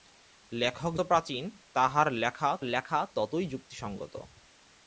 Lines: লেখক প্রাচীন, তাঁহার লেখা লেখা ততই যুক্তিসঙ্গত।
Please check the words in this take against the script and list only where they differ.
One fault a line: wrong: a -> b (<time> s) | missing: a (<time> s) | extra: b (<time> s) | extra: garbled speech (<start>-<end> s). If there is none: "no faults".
no faults